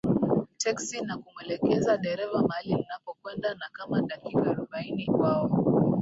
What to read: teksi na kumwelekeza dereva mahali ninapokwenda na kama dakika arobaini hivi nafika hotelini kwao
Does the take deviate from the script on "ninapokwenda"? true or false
false